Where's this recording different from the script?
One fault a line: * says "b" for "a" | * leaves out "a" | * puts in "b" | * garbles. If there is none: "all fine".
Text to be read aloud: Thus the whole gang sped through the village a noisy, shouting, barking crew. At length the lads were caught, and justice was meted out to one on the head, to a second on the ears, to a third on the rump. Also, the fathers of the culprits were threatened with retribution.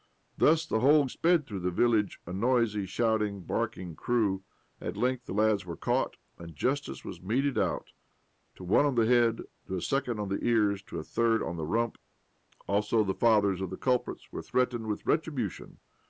* leaves out "gang"